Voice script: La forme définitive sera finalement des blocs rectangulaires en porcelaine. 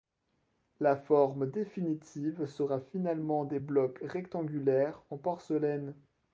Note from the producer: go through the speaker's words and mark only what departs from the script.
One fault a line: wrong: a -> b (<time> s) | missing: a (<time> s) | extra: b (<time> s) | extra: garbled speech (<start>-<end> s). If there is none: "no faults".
no faults